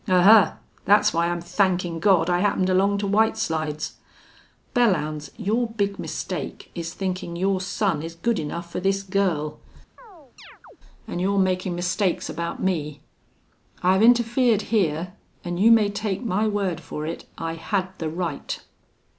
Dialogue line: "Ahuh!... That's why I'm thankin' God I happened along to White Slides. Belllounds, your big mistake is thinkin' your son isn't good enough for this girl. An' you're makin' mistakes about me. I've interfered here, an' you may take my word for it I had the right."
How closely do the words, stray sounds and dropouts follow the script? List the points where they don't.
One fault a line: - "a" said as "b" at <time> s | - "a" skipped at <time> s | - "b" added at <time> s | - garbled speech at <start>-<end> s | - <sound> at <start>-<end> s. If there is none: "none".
- "isn't" said as "is" at 8.0 s
- chirp at 10.0-10.8 s